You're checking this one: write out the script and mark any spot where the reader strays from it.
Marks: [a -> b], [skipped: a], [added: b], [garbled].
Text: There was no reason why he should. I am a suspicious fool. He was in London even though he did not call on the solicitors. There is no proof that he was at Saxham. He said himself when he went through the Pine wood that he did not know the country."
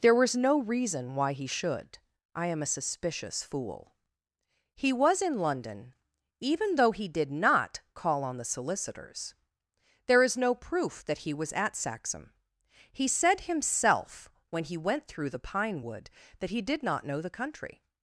There was no reason why he should. I am a suspicious fool. He was in London even though he did not call on the solicitors. There is no proof that he was at Saxham. He said himself when he went through the Pine wood that he did not know the country."